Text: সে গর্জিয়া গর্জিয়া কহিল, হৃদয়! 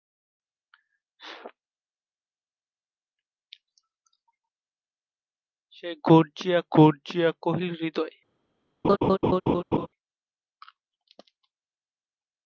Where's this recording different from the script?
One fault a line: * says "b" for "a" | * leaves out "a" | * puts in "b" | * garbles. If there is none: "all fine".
all fine